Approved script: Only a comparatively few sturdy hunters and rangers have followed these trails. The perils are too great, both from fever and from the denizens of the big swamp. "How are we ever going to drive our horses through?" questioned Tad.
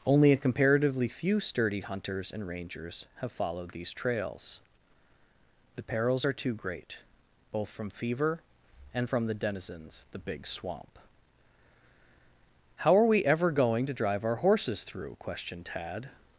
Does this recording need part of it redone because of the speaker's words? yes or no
yes